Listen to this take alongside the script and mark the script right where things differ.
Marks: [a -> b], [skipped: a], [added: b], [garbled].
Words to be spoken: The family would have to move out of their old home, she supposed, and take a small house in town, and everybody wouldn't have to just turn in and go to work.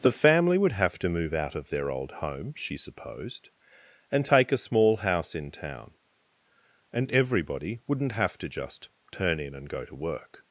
The family would have to move out of their old home, she supposed, and take a small house in town, and everybody wouldn't have to just turn in and go to work.